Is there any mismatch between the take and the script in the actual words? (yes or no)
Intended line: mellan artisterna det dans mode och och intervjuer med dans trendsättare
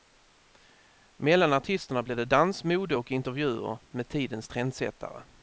yes